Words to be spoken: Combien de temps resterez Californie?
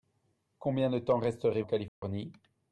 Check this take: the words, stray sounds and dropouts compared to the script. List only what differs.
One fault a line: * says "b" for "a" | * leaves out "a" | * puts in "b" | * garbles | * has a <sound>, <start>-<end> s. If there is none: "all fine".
* has a dropout, 1.9-2.0 s